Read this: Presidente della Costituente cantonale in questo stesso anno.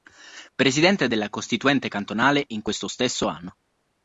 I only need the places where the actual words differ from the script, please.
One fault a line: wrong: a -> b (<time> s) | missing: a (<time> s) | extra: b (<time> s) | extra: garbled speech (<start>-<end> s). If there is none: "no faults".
no faults